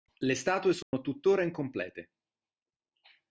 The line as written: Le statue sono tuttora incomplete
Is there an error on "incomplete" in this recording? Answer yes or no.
no